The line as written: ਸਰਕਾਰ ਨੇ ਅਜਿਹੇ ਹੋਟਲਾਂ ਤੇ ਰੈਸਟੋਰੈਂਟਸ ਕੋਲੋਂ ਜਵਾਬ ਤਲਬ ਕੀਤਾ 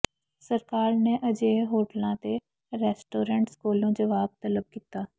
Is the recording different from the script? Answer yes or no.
no